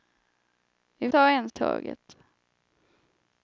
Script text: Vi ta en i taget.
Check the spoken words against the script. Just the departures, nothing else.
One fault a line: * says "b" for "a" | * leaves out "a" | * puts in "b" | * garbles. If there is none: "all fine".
all fine